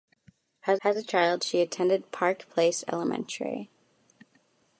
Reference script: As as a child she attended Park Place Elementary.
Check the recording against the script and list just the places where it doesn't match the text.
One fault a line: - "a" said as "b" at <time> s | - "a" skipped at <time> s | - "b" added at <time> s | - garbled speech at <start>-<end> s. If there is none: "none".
none